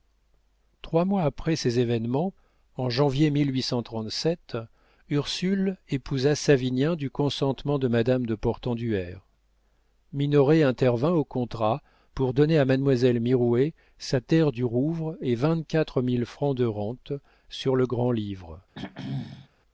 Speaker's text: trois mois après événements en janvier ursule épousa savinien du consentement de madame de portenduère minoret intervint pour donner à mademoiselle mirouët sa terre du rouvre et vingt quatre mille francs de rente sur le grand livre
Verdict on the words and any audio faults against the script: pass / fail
fail